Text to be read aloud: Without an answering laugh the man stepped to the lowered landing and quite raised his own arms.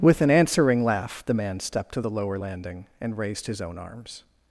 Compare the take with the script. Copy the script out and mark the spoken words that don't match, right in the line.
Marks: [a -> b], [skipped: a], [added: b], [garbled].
[Without -> With] an answering laugh the man stepped to the [lowered -> lower] landing and [skipped: quite] raised his own arms.